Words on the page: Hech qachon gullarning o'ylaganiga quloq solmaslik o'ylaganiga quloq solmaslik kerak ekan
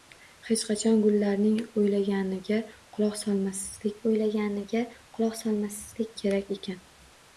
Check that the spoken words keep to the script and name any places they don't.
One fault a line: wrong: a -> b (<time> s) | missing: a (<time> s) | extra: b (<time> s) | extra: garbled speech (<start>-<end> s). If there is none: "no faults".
no faults